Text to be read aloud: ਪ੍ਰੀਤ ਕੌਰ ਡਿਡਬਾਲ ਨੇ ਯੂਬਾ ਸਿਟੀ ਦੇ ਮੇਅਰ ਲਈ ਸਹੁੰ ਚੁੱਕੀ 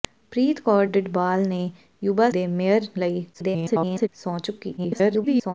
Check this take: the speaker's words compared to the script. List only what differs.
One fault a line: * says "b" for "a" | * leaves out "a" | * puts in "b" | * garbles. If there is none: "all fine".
* leaves out "ਸਿਟੀ"
* garbles
* garbles